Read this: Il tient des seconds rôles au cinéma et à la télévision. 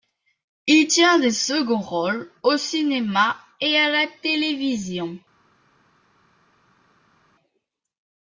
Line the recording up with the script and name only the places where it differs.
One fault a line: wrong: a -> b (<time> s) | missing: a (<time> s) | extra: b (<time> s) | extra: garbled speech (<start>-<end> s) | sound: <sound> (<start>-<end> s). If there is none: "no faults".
no faults